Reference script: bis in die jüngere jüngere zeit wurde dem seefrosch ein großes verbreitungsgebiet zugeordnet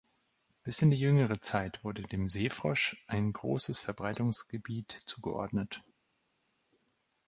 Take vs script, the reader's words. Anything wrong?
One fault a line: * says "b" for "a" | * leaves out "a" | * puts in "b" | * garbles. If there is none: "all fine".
* leaves out "jüngere"